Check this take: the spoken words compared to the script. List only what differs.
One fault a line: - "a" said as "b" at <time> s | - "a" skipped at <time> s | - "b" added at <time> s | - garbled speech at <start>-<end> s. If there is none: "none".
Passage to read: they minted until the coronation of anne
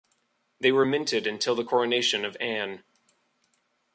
- "were" added at 0.7 s